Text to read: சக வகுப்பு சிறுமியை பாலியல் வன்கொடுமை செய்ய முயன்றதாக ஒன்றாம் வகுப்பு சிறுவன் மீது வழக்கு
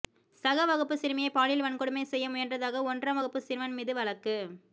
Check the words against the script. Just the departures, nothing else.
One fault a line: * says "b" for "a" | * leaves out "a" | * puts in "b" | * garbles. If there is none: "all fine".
all fine